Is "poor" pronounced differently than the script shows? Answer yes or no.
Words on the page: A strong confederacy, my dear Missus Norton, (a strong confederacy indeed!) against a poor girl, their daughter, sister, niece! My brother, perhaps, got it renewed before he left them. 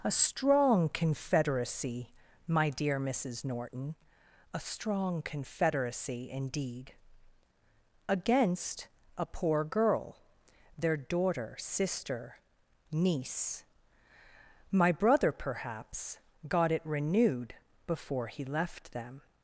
no